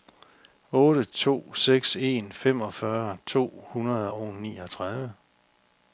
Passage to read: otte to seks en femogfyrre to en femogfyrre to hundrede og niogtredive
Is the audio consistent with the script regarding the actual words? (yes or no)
no